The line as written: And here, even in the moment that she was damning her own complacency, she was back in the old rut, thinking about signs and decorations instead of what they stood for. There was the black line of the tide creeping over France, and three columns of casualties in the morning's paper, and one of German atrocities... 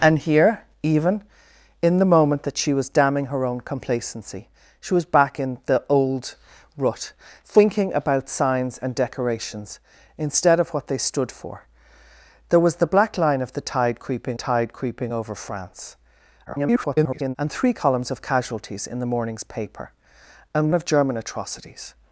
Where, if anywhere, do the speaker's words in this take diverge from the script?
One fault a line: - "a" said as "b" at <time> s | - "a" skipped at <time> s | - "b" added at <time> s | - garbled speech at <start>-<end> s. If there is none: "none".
- "tide creeping" added at 14.3 s
- garbled speech at 16.5-17.4 s
- "one" skipped at 20.7 s